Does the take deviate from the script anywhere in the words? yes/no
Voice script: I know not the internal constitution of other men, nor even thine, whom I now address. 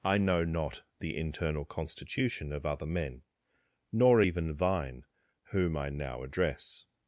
no